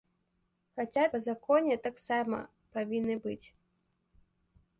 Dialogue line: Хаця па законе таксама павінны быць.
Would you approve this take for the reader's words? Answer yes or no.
yes